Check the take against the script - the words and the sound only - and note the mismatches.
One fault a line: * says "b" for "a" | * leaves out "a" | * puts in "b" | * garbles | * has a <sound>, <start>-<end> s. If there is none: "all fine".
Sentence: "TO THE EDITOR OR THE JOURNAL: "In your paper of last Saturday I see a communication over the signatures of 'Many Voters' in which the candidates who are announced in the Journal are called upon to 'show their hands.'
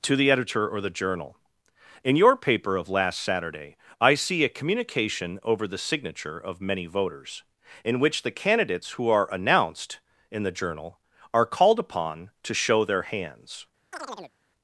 * says "signature" for "signatures"
* has a chirp, 13.9-14.3 s